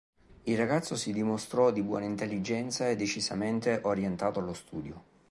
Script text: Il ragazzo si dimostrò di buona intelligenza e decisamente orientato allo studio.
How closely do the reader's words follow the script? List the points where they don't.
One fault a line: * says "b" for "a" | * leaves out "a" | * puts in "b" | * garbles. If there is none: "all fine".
all fine